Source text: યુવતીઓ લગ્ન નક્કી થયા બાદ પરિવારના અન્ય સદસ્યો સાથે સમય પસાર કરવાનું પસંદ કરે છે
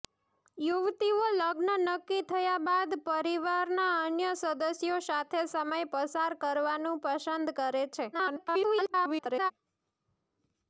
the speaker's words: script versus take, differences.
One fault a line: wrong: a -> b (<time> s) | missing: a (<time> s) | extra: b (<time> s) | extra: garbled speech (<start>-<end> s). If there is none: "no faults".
extra: garbled speech (8.1-9.5 s)